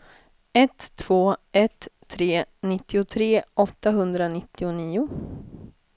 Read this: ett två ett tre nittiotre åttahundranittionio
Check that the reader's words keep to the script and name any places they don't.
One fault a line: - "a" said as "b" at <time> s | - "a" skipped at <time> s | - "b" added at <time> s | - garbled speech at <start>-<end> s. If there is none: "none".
none